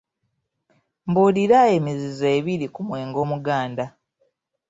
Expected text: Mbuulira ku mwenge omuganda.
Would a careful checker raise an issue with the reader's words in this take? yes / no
yes